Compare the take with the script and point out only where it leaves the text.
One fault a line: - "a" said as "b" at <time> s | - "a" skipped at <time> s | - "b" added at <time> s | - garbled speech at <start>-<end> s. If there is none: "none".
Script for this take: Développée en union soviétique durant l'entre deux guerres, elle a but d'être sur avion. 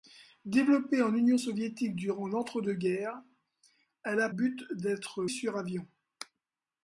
none